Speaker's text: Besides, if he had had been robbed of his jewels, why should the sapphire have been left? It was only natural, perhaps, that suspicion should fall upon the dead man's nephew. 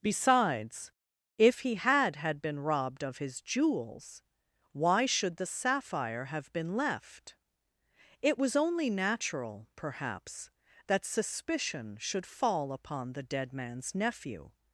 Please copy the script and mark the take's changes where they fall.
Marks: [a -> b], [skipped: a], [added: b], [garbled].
Besides, if he had had been robbed of his jewels, why should the sapphire have been left? It was only natural, perhaps, that suspicion should fall upon the dead man's nephew.